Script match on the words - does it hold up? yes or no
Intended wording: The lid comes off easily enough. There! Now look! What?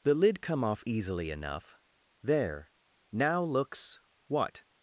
no